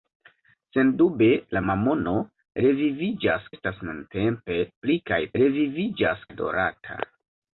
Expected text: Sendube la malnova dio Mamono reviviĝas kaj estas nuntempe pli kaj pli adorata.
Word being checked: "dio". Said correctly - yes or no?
no